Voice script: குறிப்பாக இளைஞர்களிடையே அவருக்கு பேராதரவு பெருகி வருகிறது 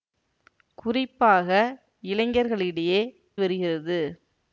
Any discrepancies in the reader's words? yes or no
yes